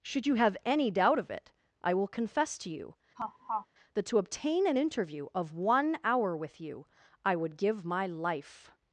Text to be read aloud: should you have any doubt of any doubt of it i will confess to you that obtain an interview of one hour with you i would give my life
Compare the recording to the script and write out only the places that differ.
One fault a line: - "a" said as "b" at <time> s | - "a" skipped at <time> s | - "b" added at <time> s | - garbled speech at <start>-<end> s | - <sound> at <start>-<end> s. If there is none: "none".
- "any doubt of" skipped at 1.3 s
- laugh at 3.2-3.7 s
- "to" added at 4.0 s